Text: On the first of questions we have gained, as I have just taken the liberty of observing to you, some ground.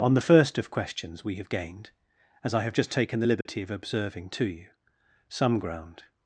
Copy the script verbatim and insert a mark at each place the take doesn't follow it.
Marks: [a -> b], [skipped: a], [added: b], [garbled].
On the first of questions we have gained, as I have just taken the liberty of observing to you, some ground.